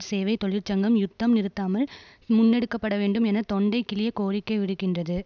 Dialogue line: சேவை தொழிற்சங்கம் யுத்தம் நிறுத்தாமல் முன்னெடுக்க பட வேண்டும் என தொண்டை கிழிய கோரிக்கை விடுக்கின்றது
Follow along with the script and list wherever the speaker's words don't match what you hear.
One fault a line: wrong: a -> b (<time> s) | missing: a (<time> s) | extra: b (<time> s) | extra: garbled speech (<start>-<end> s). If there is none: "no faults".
no faults